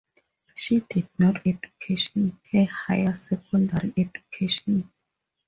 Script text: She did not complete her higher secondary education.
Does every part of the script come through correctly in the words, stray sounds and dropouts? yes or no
no